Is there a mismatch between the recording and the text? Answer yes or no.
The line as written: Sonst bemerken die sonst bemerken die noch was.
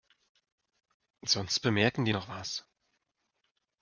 yes